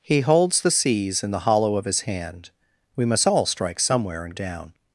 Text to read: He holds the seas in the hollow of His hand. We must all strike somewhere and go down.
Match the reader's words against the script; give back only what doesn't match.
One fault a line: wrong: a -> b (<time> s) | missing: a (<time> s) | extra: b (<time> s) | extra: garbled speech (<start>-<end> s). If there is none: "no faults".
missing: go (4.3 s)